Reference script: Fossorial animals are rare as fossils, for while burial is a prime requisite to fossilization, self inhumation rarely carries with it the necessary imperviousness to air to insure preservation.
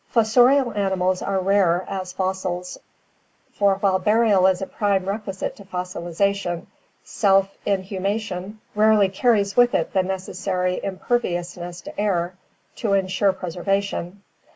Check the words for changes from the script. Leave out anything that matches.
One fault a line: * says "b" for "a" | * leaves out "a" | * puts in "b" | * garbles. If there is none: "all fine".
all fine